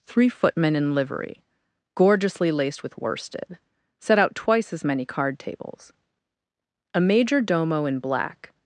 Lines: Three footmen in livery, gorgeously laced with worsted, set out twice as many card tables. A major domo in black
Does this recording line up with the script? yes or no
yes